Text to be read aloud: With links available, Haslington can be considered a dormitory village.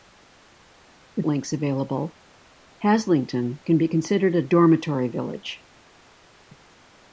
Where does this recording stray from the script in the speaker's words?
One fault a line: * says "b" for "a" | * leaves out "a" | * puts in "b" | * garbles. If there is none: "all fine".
all fine